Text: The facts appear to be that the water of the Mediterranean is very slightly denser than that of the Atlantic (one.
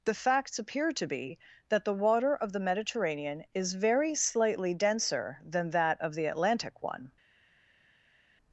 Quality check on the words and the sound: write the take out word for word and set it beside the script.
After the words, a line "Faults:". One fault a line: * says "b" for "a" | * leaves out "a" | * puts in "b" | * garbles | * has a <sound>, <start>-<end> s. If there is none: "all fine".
The facts appear to be that the water of the Mediterranean is very slightly denser than that of the Atlantic (one.
Faults:
all fine